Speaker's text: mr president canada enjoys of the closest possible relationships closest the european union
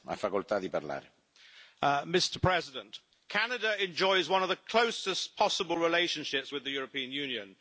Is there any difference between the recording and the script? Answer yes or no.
yes